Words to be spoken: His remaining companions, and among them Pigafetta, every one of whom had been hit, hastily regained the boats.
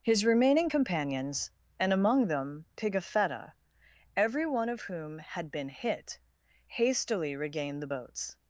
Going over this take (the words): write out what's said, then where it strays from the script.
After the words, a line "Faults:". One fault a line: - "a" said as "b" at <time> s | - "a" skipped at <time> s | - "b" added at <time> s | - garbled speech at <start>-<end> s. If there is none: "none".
His remaining companions, and among them Pigafetta, every one of whom had been hit, hastily regained the boats.
Faults:
none